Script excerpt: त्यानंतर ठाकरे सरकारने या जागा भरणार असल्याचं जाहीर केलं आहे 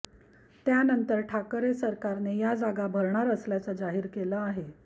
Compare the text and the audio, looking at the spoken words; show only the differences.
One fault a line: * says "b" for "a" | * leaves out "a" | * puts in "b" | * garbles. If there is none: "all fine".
all fine